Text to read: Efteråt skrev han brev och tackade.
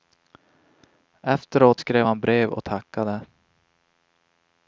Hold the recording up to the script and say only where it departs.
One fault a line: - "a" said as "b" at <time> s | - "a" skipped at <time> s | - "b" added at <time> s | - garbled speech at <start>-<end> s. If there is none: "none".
none